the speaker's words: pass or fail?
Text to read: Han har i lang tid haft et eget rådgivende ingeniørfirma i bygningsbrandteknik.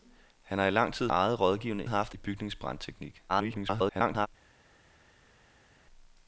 fail